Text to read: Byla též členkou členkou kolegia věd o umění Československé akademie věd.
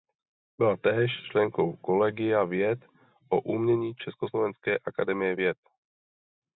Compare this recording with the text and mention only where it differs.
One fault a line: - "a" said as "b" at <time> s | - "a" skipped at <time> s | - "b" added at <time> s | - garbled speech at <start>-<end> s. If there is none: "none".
- "členkou" skipped at 1.8 s